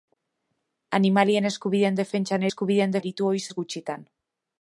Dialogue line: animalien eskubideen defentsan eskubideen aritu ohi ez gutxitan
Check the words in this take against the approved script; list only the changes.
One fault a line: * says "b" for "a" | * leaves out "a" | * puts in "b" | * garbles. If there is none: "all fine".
all fine